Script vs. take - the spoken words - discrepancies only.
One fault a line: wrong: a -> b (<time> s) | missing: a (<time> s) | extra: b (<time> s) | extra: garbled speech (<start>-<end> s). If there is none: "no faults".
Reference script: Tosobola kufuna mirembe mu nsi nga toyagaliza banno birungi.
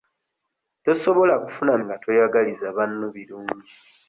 missing: mirembe mu nsi (1.7 s)